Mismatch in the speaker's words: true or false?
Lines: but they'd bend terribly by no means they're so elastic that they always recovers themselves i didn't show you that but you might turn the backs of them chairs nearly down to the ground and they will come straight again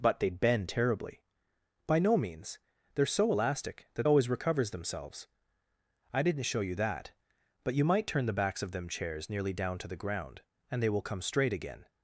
true